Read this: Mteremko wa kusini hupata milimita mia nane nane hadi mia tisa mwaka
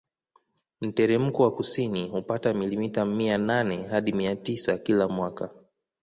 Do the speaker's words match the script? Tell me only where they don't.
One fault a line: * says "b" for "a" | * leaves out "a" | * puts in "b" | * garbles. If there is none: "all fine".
* leaves out "nane"
* puts in "kila"